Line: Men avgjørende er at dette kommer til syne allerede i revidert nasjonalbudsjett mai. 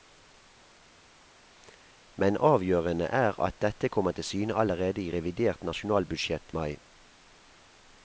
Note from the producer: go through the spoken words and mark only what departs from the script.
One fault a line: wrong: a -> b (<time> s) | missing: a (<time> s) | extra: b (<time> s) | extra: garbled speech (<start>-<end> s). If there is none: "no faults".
no faults